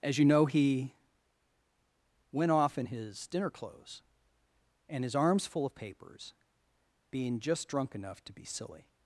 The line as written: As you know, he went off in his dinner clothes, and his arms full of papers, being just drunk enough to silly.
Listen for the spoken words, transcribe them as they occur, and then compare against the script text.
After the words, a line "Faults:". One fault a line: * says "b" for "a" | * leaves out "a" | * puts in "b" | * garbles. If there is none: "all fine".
As you know, he went off in his dinner clothes, and his arms full of papers, being just drunk enough to be silly.
Faults:
* puts in "be"